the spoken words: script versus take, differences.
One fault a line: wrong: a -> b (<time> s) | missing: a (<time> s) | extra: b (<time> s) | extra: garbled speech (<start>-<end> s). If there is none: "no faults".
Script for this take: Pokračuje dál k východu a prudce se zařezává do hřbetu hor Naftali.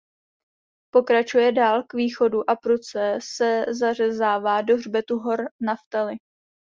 no faults